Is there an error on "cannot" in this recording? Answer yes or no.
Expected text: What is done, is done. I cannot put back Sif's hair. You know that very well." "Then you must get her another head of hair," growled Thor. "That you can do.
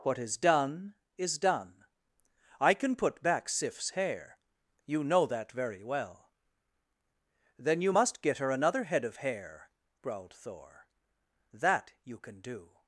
yes